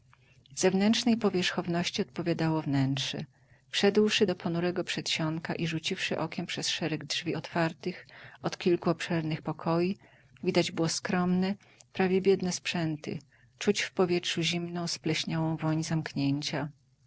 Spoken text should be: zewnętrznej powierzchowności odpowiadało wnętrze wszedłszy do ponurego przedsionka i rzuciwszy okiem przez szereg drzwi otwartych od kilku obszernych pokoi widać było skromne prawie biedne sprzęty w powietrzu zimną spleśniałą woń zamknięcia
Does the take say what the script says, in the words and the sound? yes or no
no